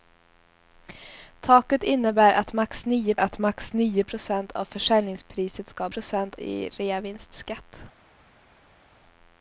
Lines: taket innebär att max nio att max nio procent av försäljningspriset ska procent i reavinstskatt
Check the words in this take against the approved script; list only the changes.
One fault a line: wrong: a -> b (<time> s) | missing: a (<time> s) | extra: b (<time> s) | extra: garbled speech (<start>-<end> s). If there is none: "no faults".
no faults